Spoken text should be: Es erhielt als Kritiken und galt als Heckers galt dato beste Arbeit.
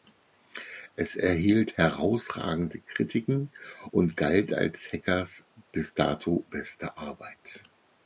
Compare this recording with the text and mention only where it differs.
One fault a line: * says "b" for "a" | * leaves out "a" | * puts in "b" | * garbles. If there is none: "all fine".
* says "herausragende" for "als"
* says "bis" for "galt"